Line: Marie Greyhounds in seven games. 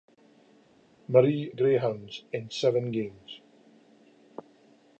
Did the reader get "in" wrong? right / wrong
right